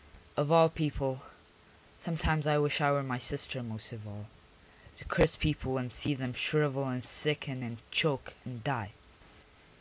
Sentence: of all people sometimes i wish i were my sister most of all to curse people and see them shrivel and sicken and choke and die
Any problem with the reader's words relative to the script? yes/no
no